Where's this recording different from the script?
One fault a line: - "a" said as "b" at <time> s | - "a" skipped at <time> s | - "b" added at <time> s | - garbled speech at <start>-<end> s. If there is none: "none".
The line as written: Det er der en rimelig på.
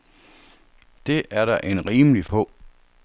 none